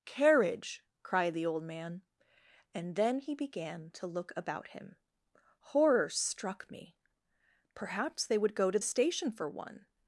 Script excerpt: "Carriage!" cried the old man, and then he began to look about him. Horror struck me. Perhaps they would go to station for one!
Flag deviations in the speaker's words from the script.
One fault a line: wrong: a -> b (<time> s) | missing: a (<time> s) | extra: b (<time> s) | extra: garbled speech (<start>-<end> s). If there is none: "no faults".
no faults